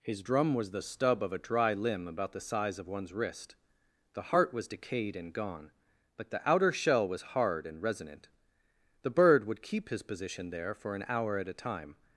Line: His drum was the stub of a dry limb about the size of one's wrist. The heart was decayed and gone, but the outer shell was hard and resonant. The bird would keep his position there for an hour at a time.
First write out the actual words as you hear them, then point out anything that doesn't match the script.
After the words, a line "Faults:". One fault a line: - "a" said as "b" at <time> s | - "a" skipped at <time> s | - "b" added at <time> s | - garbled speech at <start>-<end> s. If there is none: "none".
His drum was the stub of a dry limb about the size of one's wrist. The heart was decayed and gone, but the outer shell was hard and resonant. The bird would keep his position there for an hour at a time.
Faults:
none